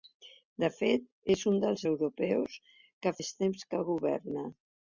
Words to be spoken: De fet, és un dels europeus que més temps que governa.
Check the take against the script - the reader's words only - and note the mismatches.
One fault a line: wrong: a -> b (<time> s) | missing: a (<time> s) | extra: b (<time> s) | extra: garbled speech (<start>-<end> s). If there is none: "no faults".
no faults